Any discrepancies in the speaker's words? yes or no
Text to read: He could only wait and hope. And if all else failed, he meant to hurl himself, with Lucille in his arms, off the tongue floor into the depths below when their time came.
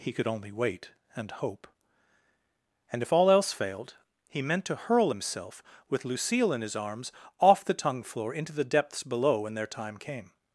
no